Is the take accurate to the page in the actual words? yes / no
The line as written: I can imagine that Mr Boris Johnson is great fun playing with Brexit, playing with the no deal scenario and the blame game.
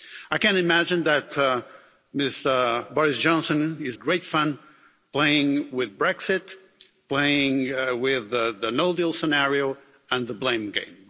yes